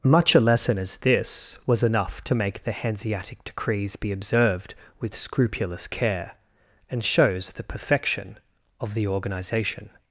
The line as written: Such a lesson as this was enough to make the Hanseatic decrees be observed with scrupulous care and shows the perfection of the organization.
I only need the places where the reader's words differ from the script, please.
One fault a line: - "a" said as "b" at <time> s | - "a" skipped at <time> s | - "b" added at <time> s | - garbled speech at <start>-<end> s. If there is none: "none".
- "Such" said as "Much" at 0.0 s